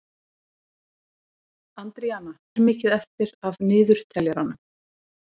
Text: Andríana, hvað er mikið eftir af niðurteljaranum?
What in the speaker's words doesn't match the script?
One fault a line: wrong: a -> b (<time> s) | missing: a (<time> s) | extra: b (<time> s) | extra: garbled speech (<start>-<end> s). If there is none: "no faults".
missing: hvað (2.3 s)